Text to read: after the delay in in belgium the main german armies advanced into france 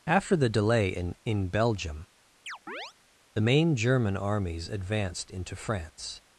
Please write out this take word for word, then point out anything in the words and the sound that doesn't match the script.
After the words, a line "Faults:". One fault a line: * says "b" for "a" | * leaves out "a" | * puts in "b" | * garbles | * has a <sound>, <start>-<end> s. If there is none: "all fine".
after the delay in in belgium the main german armies advanced into france
Faults:
* has a chirp, 2.5-2.9 s